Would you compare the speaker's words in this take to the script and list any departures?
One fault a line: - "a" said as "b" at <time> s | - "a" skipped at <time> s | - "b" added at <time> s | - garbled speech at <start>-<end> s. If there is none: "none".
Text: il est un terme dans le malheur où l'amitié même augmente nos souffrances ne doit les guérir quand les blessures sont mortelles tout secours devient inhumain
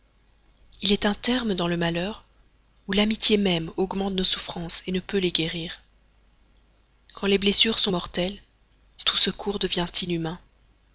- "doit" said as "peut" at 5.0 s